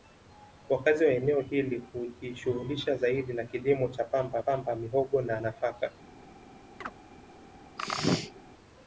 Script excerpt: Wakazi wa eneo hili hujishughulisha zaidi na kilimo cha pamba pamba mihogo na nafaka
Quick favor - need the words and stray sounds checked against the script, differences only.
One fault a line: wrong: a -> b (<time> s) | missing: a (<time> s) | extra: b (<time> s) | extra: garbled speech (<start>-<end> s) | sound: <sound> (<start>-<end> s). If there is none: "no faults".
sound: chirp (6.8-6.9 s)
sound: sneeze (7.8-8.4 s)